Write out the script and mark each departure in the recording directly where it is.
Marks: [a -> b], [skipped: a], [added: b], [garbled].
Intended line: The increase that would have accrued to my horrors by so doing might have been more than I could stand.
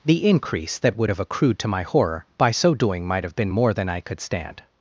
The increase that would have accrued to my [horrors -> horror] by so doing might have been more than I could stand.